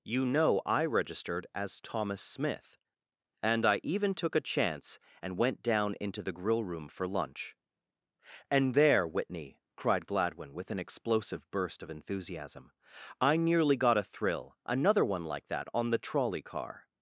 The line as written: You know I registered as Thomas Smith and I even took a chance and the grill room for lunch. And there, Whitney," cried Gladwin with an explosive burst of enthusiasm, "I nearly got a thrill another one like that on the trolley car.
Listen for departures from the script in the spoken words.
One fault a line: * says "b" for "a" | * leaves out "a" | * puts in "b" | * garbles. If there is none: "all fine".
* puts in "went down into"